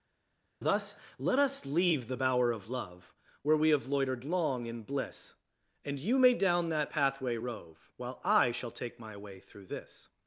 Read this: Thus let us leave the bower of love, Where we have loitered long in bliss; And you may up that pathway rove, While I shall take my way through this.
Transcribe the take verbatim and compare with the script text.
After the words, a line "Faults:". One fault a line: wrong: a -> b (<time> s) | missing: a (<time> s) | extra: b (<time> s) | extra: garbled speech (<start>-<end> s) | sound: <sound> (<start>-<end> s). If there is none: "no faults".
Thus let us leave the bower of love, Where we have loitered long in bliss; And you may down that pathway rove, While I shall take my way through this.
Faults:
wrong: up -> down (6.3 s)